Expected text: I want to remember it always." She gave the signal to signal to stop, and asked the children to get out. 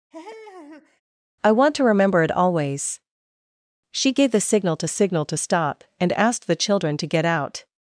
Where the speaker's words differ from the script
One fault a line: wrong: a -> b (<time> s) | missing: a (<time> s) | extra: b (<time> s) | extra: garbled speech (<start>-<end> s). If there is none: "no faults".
no faults